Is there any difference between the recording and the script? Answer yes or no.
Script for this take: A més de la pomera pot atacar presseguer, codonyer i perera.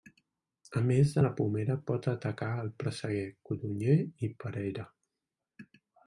yes